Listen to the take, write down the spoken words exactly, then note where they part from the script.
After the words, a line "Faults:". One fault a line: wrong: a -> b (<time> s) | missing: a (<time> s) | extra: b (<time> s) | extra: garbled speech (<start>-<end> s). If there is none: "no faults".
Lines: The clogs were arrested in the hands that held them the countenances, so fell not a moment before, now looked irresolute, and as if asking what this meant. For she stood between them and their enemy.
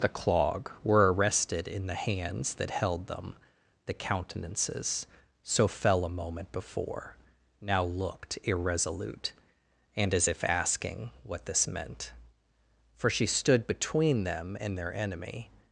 The clog were arrested in the hands that held them the countenances, so fell a moment before, now looked irresolute, and as if asking what this meant. For she stood between them and their enemy.
Faults:
wrong: clogs -> clog (0.1 s)
missing: not (6.0 s)